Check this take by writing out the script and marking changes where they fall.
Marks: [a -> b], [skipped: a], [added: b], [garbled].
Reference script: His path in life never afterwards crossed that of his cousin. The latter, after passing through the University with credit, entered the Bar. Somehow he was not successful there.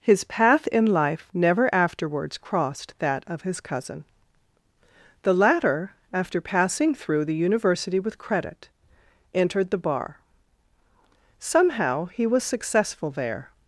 His path in life never afterwards crossed that of his cousin. The latter, after passing through the University with credit, entered the Bar. Somehow he was [skipped: not] successful there.